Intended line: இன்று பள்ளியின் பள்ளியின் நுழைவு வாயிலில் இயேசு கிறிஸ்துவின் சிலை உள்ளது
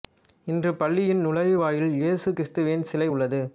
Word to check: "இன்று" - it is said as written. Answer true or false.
true